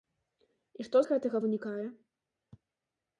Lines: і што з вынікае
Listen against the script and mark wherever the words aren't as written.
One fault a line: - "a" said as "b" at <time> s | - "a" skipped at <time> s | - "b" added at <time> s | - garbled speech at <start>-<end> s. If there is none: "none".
- "гэтага" added at 1.1 s